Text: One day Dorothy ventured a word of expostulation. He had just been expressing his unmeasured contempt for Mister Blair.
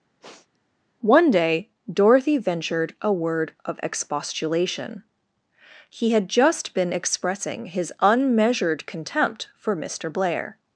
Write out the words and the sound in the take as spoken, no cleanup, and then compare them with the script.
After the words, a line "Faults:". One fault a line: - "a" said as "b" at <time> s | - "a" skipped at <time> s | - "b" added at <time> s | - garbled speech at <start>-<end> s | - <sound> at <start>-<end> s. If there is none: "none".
One day Dorothy ventured a word of expostulation. He had just been expressing his unmeasured contempt for Mister Blair.
Faults:
- sniff at 0.2-0.6 s